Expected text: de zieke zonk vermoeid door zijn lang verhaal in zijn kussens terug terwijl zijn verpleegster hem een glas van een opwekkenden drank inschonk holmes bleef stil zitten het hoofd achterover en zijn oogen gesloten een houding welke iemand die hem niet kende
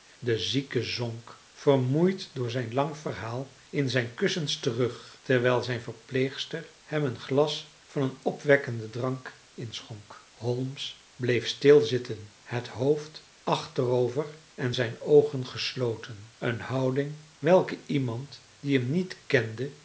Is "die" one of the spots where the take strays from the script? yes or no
no